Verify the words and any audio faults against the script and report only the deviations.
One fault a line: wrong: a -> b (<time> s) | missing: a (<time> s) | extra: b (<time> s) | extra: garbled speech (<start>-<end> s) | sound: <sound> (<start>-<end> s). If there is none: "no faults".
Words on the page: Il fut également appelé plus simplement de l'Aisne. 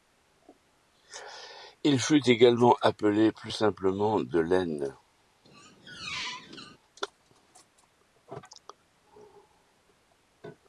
sound: squeak (5.4-6.8 s)